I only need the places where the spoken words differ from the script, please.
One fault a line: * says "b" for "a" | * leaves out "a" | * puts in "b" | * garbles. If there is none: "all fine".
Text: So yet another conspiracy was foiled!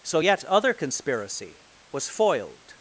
* says "other" for "another"